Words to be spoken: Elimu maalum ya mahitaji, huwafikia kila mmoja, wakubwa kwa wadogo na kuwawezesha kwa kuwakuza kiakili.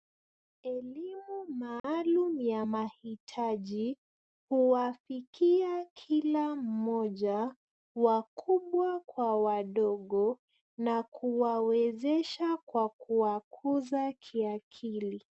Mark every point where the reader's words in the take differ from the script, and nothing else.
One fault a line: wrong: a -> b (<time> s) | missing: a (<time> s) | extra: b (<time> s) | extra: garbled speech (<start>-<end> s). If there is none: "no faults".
no faults